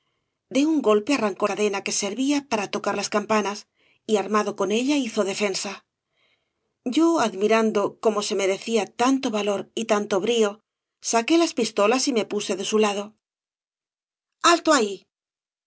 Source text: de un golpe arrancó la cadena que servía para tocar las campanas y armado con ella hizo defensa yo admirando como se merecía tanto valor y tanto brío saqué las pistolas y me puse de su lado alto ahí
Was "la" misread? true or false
true